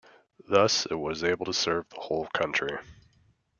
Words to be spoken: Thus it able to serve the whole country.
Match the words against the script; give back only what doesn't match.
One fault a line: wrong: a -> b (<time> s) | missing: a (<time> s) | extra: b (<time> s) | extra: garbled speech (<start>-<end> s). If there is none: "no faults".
extra: was (0.9 s)